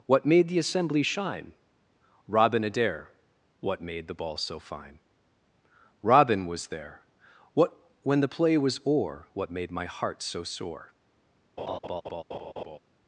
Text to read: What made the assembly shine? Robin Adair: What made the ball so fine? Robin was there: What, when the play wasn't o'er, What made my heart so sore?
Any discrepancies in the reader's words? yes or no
yes